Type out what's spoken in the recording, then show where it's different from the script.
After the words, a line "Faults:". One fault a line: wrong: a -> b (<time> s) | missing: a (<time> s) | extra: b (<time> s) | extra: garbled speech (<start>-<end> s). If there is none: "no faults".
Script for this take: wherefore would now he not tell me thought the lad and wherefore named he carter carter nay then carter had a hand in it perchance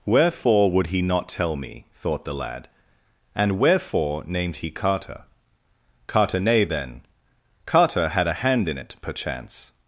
wherefore would he not tell me thought the lad and wherefore named he carter carter nay then carter had a hand in it perchance
Faults:
missing: now (0.9 s)